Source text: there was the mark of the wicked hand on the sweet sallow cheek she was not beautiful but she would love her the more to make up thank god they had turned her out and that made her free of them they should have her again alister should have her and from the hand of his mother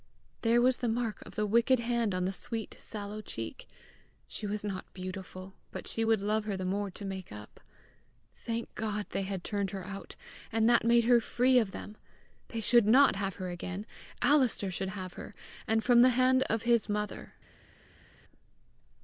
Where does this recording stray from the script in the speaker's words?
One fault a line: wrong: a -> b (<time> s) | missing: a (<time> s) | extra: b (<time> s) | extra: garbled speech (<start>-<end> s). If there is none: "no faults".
extra: not (12.9 s)